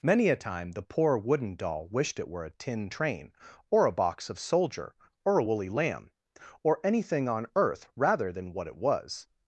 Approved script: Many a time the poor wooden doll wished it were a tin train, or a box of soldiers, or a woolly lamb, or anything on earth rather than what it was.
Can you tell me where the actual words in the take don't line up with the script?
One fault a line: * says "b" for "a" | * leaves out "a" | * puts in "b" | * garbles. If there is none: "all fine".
* says "soldier" for "soldiers"